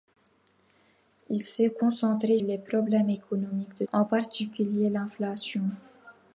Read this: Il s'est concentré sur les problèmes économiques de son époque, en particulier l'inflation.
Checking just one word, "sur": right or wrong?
wrong